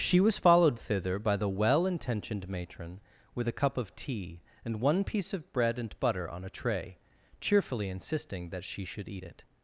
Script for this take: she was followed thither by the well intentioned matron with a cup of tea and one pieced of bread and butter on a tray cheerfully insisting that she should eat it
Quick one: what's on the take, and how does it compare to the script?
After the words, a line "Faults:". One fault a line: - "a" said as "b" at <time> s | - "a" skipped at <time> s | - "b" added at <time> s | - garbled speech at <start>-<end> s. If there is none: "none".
she was followed thither by the well intentioned matron with a cup of tea and one piece of bread and butter on a tray cheerfully insisting that she should eat it
Faults:
- "pieced" said as "piece" at 5.0 s